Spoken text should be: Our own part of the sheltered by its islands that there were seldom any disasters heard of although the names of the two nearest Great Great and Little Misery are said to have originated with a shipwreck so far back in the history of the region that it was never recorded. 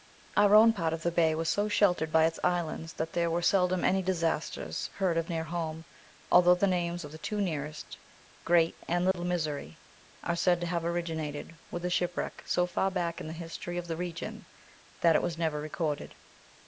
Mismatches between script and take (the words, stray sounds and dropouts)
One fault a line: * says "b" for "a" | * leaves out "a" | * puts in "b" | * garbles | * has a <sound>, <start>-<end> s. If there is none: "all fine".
* puts in "bay was so"
* puts in "near home"
* leaves out "Great"
* has a dropout, 9.1-9.1 s